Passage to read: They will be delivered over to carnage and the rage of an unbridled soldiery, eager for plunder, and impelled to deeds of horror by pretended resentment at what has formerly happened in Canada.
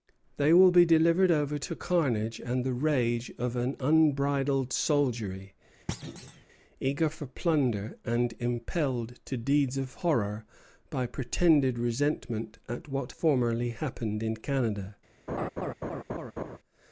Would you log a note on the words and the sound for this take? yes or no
yes